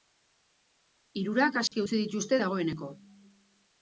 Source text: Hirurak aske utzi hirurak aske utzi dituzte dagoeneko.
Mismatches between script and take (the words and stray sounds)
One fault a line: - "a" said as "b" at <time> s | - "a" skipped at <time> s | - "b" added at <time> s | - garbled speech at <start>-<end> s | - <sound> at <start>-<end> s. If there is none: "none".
- dropout at 1.7-1.7 s
- "hirurak aske utzi" skipped at 2.0 s